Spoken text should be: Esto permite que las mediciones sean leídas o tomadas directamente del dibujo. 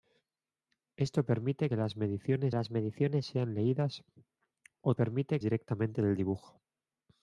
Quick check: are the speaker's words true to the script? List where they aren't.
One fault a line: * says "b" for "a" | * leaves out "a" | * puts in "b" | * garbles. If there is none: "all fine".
* puts in "las mediciones"
* says "permite" for "tomadas"